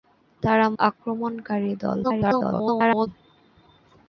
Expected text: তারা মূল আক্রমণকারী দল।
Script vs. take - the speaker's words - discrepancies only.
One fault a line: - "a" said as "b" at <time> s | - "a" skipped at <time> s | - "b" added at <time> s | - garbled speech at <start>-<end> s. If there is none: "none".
- "মূল" skipped at 0.7 s
- garbled speech at 2.0-3.1 s